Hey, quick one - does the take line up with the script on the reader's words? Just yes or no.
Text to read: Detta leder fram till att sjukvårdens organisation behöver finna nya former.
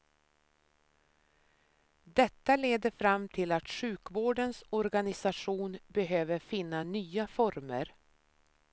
yes